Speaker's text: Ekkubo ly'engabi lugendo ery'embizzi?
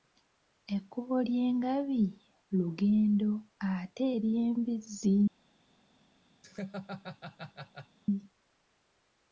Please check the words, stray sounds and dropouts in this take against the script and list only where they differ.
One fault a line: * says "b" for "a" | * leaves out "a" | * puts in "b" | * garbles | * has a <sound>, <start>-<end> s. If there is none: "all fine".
* puts in "ate"
* has a laugh, 6.4-8.0 s